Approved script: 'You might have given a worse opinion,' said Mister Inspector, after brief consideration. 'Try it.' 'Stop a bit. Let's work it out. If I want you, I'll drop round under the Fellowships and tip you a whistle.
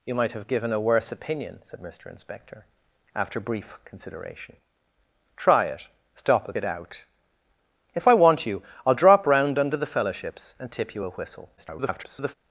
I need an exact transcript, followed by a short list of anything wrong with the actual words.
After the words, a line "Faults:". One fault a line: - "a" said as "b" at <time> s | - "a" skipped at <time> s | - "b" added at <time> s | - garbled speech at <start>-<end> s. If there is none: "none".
'You might have given a worse opinion,' said Mister Inspector, after brief consideration. 'Try it.' 'Stop a it out. If I want you, I'll drop round under the Fellowships and tip you a whistle. [garbled]
Faults:
- "bit Let's work" skipped at 6.5 s
- garbled speech at 11.6-12.3 s